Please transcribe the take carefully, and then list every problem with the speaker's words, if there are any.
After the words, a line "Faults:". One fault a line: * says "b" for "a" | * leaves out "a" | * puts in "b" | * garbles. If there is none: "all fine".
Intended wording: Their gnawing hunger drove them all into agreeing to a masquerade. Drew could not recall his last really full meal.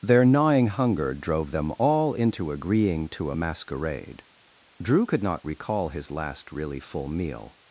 Their gnawing hunger drove them all into agreeing to a masquerade. Drew could not recall his last really full meal.
Faults:
all fine